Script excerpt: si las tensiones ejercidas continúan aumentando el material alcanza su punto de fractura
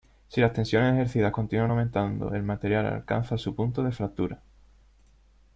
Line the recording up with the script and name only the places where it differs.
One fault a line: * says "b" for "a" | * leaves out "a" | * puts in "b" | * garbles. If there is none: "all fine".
all fine